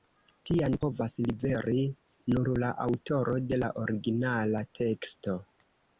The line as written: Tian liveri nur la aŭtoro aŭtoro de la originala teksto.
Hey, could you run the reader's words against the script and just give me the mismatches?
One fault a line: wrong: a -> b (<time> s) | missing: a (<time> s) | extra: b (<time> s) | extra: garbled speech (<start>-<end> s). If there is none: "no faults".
extra: povas (0.8 s)
missing: aŭtoro (3.3 s)